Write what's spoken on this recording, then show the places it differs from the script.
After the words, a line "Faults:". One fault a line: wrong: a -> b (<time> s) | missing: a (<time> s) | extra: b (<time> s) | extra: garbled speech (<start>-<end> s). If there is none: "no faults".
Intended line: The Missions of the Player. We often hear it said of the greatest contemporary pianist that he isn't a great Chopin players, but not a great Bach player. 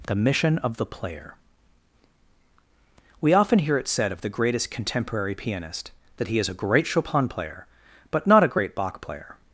The Mission of the Player. We often hear it said of the greatest contemporary pianist that he is a great Chopin player, but not a great Bach player.
Faults:
wrong: Missions -> Mission (0.1 s)
wrong: isn't -> is (6.4 s)
wrong: players -> player (7.3 s)